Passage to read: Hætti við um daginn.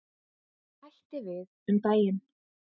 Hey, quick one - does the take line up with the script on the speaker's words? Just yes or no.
yes